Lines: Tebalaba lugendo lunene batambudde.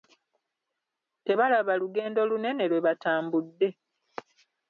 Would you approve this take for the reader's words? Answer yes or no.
no